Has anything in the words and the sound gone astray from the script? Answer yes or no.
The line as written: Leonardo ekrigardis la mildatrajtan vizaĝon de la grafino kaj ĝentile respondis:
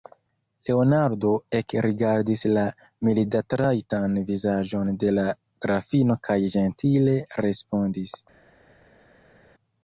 no